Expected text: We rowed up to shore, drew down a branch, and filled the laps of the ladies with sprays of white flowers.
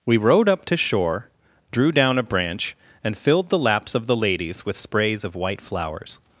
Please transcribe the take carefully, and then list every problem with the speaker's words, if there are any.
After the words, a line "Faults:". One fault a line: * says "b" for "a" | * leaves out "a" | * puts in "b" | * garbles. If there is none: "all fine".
We rowed up to shore, drew down a branch, and filled the laps of the ladies with sprays of white flowers.
Faults:
all fine